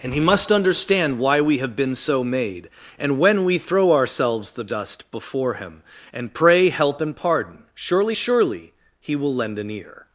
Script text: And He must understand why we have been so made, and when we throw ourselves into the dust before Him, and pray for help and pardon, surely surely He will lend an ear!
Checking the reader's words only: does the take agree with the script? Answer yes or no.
no